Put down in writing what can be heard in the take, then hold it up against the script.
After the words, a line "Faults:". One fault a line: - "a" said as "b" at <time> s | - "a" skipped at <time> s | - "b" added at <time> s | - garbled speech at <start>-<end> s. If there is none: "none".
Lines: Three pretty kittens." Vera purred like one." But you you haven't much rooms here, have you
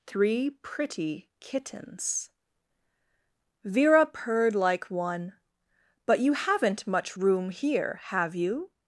Three pretty kittens." Vera purred like one." But you haven't much room here, have you
Faults:
- "you" skipped at 6.3 s
- "rooms" said as "room" at 7.2 s